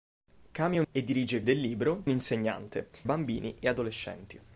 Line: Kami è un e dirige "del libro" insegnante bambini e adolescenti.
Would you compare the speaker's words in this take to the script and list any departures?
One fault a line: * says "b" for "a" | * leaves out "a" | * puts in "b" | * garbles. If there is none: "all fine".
all fine